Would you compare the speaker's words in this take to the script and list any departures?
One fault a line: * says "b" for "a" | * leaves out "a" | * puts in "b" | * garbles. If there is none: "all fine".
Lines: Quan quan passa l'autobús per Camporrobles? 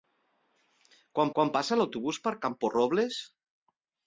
all fine